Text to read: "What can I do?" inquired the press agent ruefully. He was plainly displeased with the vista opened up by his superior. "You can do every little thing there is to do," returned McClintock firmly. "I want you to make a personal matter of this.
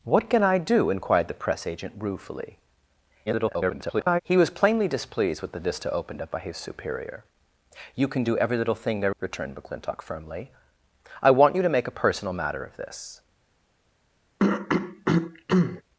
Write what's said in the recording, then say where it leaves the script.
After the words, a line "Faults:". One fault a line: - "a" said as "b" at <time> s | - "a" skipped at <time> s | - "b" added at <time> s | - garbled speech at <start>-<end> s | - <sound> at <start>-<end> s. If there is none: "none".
"What can I do?" inquired the press agent ruefully. [garbled] He was plainly displeased with the vista opened up by his superior. "You can do every little thing there," returned McClintock firmly. "I want you to make a personal matter of this.
Faults:
- garbled speech at 3.3-4.2 s
- "is to do" skipped at 9.2 s
- throat clearing at 14.4-15.8 s